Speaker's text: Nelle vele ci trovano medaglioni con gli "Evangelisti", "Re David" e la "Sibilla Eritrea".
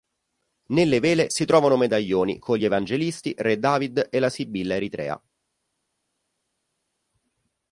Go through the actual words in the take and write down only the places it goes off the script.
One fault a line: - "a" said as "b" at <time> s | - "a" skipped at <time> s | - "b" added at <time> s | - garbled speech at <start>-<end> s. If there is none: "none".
- "ci" said as "si" at 1.3 s